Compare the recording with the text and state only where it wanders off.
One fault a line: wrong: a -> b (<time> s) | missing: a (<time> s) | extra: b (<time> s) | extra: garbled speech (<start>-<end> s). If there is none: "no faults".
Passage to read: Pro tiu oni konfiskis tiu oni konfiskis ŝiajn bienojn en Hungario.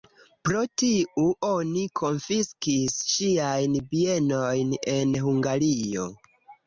missing: tiu oni konfiskis (3.0 s)